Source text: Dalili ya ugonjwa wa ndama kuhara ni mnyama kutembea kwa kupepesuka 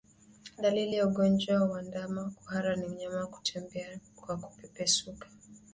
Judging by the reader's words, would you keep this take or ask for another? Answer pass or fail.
pass